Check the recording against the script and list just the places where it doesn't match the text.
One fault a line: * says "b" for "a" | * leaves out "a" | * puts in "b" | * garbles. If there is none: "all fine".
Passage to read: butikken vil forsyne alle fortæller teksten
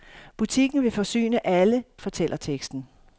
all fine